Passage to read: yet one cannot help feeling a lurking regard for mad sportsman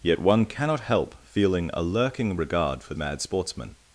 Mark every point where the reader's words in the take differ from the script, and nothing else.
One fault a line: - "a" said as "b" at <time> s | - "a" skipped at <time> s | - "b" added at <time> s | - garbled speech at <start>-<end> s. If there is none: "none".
none